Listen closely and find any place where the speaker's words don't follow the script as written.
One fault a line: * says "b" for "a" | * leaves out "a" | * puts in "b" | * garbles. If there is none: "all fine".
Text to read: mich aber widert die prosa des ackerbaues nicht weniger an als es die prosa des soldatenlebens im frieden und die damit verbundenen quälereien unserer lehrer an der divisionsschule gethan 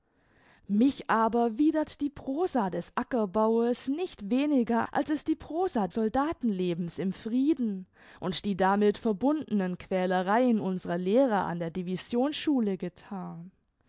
* leaves out "an"
* leaves out "des"